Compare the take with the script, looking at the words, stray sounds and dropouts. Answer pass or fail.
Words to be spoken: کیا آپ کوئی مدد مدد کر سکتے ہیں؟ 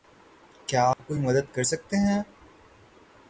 fail